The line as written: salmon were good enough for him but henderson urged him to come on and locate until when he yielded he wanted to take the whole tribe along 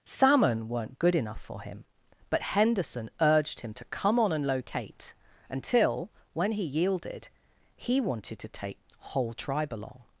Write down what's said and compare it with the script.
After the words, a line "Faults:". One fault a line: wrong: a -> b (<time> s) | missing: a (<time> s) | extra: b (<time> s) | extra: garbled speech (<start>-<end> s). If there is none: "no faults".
salmon weren't good enough for him but henderson urged him to come on and locate until when he yielded he wanted to take whole tribe along
Faults:
wrong: were -> weren't (0.7 s)
missing: the (8.8 s)